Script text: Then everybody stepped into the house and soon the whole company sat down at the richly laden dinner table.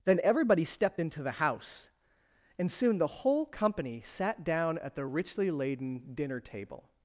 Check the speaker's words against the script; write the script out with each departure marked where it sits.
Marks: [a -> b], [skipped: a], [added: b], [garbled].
Then everybody stepped into the house and soon the whole company sat down at the richly laden dinner table.